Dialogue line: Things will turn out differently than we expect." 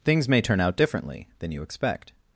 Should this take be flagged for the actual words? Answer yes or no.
yes